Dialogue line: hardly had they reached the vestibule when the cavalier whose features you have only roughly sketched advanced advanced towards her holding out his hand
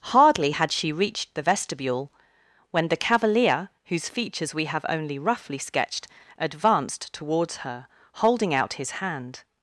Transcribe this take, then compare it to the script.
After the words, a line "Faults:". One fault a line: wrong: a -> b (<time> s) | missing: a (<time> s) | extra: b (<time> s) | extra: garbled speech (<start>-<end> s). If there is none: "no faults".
hardly had she reached the vestibule when the cavalier whose features we have only roughly sketched advanced towards her holding out his hand
Faults:
wrong: they -> she (0.7 s)
wrong: you -> we (4.5 s)
missing: advanced (7.1 s)